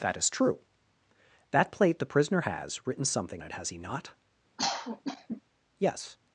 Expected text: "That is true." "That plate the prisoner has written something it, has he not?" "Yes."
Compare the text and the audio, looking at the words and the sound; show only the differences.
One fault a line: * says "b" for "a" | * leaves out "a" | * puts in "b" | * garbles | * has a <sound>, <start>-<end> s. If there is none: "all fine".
* has a cough, 4.6-5.4 s